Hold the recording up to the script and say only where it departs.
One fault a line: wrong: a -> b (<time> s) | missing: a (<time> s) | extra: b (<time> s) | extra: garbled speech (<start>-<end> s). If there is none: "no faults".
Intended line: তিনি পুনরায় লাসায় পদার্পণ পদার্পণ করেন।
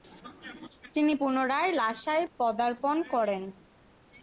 missing: পদার্পণ (3.0 s)